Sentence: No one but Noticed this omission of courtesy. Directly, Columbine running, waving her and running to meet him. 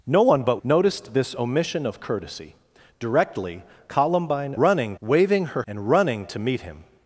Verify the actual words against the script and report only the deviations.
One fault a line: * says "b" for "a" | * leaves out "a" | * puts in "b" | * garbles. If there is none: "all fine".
all fine